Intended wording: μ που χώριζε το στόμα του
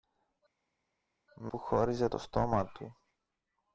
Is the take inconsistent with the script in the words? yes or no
no